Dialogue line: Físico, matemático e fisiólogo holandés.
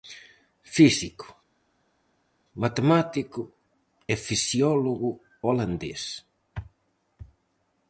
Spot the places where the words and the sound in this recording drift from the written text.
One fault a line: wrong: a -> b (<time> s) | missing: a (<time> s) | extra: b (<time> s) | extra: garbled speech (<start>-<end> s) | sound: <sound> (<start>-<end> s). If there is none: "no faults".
no faults